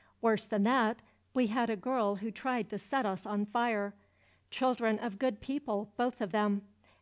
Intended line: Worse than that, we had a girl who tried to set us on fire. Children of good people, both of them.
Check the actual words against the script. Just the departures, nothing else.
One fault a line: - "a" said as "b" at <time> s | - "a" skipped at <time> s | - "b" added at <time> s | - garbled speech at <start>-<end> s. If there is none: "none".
none